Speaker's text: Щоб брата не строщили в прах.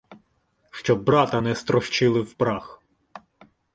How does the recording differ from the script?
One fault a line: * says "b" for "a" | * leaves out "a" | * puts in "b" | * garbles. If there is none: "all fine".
all fine